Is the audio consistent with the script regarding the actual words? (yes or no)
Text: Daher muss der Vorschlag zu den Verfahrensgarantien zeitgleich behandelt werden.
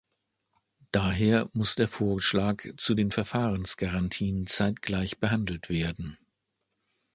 yes